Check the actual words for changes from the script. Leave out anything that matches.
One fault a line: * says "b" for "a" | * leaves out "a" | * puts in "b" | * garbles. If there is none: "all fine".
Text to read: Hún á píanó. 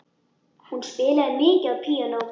* puts in "spilaði mikið"